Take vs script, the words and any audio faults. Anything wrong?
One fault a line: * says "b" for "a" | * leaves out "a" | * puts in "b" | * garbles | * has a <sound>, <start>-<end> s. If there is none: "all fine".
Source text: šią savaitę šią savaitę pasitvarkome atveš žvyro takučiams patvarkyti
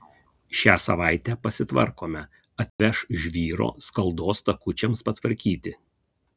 * leaves out "šią savaitę"
* has a dropout, 2.7-2.8 s
* puts in "skaldos"